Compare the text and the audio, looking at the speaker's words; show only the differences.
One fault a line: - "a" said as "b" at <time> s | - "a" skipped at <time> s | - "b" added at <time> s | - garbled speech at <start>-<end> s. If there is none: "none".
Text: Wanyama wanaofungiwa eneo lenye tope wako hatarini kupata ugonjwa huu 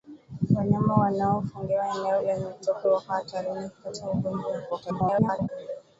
- garbled speech at 4.7-5.5 s